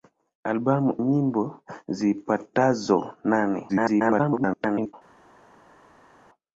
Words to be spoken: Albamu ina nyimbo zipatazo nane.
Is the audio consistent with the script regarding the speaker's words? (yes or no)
no